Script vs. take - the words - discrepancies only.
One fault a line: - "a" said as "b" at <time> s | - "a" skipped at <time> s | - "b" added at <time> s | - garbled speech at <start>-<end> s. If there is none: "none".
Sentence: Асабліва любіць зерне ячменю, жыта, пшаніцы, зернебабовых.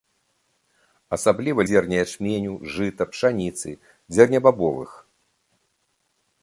- "любіць" skipped at 1.6 s